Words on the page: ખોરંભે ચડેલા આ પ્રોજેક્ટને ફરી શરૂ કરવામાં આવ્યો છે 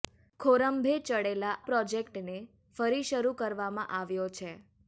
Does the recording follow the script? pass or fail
fail